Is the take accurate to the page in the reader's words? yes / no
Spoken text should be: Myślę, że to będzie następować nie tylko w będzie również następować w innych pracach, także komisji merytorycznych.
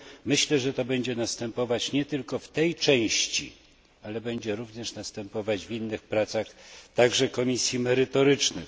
no